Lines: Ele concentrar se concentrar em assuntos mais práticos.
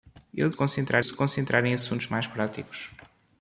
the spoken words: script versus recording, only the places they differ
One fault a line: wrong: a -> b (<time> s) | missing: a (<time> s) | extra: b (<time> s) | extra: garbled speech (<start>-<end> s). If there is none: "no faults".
no faults